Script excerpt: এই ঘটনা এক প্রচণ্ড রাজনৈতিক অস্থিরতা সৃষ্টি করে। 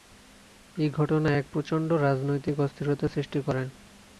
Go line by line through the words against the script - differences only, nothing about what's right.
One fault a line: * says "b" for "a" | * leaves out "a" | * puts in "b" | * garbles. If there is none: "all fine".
all fine